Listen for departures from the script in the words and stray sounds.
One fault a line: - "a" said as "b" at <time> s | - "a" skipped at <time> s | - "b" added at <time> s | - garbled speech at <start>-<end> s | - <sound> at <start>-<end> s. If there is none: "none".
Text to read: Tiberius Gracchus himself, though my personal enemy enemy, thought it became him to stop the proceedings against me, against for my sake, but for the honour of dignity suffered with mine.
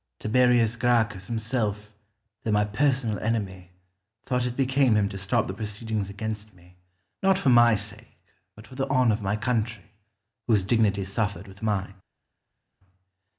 - "enemy" skipped at 3.7 s
- "against" said as "not" at 7.2 s
- "my country whose" added at 9.2 s